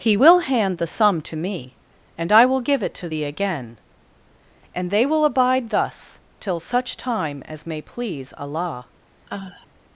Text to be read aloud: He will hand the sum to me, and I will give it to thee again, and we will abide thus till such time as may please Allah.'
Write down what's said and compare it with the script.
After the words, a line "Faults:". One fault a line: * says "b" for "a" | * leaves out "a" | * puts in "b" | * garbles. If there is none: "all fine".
He will hand the sum to me, and I will give it to thee again, and they will abide thus till such time as may please Allah.'
Faults:
* says "they" for "we"